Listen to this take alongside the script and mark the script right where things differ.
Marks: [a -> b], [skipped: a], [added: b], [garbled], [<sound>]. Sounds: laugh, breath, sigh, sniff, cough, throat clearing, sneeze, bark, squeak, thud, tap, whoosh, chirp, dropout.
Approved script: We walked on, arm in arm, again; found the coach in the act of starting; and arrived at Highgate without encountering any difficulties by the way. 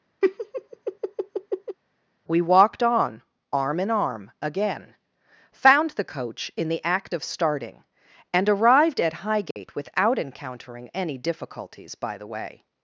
[laugh] We walked on, arm in arm, again; found the coach in the act of starting; and arrived at Highgate [dropout] without encountering any difficulties by the way.